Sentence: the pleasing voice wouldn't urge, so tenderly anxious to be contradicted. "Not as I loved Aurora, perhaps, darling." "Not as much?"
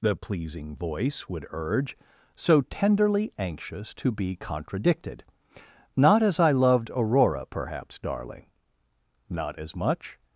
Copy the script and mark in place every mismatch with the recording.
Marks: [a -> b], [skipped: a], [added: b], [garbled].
the pleasing voice [wouldn't -> would] urge, so tenderly anxious to be contradicted. "Not as I loved Aurora, perhaps, darling." "Not as much?"